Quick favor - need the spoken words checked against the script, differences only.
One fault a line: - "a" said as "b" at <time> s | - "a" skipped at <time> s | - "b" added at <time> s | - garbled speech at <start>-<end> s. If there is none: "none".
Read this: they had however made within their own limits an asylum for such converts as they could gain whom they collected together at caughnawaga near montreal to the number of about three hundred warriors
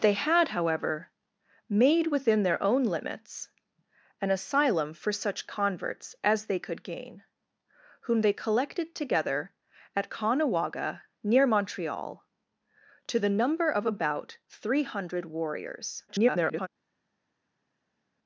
- garbled speech at 16.1-16.7 s